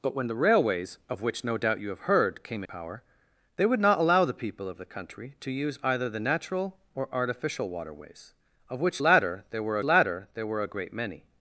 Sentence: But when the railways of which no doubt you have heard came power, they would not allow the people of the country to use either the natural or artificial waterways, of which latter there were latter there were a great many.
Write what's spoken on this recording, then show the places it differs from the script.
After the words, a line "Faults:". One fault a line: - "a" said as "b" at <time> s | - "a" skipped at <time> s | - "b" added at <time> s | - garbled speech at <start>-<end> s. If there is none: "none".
But when the railways of which no doubt you have heard came power, they would not allow the people of the country to use either the natural or artificial waterways, of which latter there were latter there were a great many.
Faults:
none